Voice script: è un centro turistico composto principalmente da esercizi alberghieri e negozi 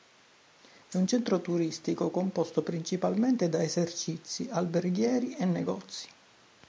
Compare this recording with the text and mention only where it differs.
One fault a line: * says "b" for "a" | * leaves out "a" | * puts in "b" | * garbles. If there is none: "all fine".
all fine